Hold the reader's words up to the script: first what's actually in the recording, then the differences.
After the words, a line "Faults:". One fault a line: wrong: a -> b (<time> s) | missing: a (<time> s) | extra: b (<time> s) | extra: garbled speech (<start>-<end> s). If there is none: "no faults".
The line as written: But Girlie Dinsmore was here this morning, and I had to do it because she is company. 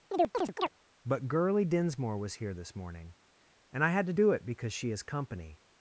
But Girlie Dinsmore was here this morning, and I had to do it because she is company.
Faults:
no faults